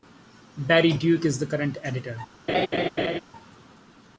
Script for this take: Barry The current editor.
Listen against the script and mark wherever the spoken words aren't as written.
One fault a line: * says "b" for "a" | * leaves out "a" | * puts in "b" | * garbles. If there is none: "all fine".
* puts in "Duke is"